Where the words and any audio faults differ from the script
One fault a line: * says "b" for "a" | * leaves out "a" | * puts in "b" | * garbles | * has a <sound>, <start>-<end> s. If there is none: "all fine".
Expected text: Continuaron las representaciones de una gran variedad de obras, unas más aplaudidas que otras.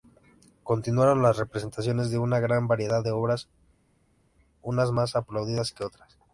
all fine